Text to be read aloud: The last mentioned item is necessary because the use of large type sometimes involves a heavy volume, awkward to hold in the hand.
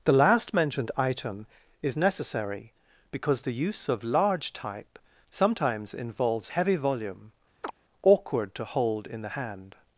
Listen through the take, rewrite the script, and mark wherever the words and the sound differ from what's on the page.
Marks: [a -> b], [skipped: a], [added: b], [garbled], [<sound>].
The last mentioned item is necessary because the use of large type sometimes involves [skipped: a] heavy volume, [chirp] awkward to hold in the hand.